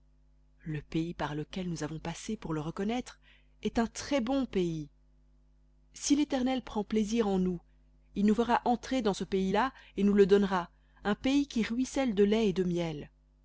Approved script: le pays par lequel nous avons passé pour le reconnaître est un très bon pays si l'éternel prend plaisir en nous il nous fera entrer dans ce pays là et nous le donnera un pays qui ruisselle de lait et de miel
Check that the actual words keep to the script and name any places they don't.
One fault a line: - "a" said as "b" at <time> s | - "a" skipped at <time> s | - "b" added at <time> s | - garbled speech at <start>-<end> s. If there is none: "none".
none